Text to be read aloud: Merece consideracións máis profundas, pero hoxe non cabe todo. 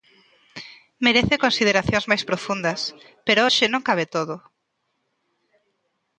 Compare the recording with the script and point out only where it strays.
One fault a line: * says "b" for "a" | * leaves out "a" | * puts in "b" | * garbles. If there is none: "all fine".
all fine